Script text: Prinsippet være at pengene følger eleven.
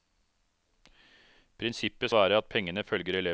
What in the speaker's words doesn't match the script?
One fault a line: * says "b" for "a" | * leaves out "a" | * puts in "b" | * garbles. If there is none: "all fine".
all fine